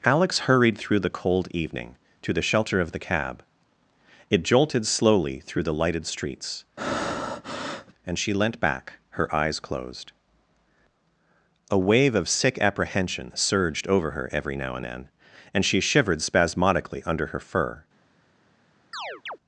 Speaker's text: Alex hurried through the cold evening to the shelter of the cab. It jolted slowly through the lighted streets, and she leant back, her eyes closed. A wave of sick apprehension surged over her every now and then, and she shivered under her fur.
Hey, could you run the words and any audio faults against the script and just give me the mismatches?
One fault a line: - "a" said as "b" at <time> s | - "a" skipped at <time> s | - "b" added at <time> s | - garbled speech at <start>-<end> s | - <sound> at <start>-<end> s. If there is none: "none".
- breath at 6.8-7.9 s
- "spasmodically" added at 16.2 s
- chirp at 18.9-19.4 s